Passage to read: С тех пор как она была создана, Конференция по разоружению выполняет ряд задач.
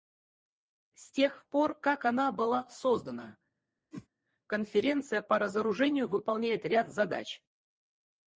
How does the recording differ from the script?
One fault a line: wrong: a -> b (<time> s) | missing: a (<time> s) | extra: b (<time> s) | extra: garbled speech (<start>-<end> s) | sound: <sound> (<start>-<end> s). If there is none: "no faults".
sound: whoosh (3.9-4.1 s)